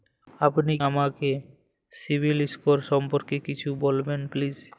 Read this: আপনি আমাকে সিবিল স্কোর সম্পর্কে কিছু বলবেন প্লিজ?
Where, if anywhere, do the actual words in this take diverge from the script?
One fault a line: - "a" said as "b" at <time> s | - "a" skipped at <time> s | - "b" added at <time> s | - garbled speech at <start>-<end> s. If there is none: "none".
none